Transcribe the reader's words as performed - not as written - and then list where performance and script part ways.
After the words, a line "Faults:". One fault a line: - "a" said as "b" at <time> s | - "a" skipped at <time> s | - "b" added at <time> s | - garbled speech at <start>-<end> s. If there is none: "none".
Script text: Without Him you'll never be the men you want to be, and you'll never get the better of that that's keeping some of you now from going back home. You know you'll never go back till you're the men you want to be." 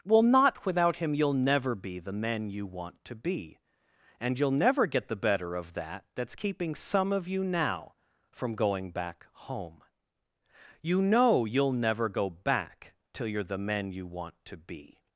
well not Without Him you'll never be the men you want to be, and you'll never get the better of that that's keeping some of you now from going back home. You know you'll never go back till you're the men you want to be."
Faults:
- "well not" added at 0.1 s